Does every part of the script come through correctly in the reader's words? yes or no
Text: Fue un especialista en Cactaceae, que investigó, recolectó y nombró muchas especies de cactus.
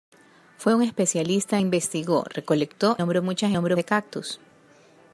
no